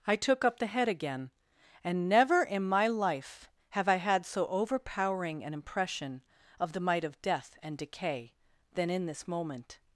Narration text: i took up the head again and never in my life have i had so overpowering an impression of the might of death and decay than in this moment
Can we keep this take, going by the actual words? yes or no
yes